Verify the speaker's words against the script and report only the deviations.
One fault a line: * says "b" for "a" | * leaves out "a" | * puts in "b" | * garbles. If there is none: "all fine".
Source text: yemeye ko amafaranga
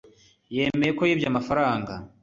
* puts in "yibye"